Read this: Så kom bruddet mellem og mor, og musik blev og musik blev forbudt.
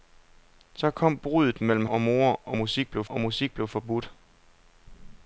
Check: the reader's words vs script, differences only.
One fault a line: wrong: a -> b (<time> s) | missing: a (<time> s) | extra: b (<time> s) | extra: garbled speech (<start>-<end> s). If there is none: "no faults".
no faults